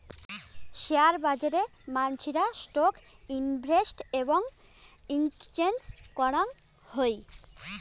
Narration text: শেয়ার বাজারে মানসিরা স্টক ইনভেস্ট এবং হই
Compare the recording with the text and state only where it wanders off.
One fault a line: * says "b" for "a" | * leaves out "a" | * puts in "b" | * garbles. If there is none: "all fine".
* puts in "এক্সচেঞ্জ করাং"